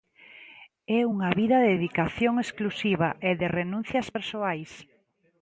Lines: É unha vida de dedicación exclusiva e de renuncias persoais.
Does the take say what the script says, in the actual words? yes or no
yes